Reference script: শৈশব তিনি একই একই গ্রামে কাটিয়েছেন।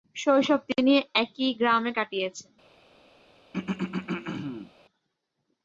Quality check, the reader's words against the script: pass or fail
fail